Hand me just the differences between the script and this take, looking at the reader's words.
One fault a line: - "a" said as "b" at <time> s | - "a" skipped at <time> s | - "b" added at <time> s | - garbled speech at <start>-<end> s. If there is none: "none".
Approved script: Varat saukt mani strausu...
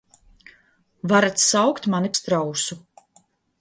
none